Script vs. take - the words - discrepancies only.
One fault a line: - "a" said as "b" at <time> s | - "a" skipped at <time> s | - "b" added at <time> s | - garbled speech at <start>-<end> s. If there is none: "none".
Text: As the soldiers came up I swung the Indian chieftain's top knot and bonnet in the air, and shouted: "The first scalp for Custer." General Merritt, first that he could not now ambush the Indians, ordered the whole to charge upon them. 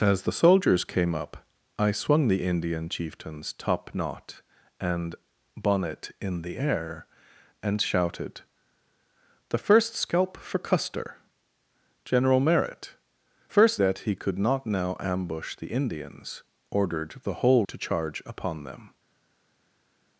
none